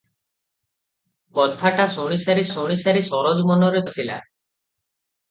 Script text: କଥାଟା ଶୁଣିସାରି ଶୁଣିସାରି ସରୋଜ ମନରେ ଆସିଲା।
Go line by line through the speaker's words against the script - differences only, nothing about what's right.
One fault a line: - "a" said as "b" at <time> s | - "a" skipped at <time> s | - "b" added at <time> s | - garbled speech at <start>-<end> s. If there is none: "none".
none